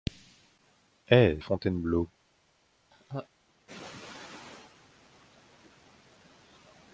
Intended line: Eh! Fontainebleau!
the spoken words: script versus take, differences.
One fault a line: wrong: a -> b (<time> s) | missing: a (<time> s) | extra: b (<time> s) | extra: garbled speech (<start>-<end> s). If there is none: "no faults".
no faults